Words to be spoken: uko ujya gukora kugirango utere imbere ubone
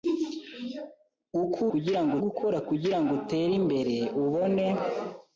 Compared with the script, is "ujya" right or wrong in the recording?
wrong